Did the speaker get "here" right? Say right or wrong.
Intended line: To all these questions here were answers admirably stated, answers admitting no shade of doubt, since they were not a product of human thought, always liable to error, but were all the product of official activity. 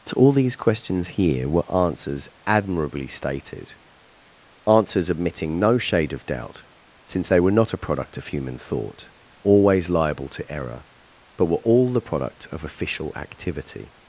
right